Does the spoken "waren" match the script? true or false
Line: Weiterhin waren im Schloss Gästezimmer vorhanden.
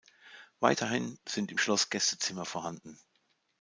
false